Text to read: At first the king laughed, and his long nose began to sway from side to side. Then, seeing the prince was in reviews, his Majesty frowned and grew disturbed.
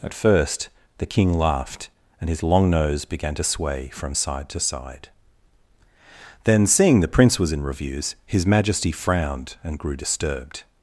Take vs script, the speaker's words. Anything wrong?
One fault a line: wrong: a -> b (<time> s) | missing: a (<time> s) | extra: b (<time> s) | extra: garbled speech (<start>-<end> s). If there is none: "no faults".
no faults